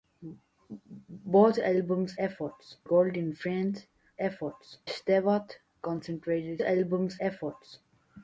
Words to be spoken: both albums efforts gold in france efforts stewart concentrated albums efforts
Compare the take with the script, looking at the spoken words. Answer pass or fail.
pass